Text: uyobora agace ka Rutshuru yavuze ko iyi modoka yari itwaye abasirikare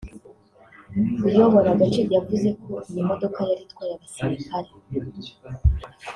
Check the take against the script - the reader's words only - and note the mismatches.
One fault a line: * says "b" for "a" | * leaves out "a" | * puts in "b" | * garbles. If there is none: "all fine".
* leaves out "ka Rutshuru"